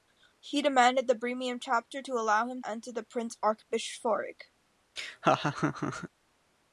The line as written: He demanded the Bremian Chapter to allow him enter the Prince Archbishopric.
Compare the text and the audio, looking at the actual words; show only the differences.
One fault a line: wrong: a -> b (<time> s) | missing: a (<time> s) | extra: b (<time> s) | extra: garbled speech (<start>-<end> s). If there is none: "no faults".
no faults